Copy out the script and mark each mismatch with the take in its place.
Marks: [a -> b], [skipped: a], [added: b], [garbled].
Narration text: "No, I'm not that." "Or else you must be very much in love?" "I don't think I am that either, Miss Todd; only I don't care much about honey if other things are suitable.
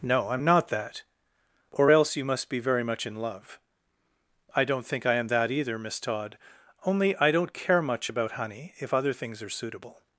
"No, I'm not that." "Or else you must be very much in love?" "I don't think I am that either, Miss Todd; only I don't care much about honey if other things are suitable.